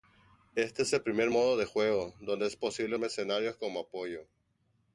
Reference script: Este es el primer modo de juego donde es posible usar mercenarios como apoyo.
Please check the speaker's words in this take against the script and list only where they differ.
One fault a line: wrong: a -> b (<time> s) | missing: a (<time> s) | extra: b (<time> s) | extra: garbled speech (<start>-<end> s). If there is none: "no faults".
missing: usar (2.9 s)